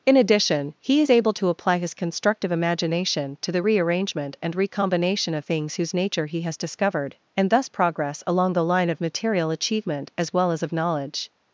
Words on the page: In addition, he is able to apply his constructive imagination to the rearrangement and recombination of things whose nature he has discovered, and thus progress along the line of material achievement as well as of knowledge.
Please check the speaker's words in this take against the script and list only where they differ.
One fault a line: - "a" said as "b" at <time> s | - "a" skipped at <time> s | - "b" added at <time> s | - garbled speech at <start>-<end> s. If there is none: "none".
none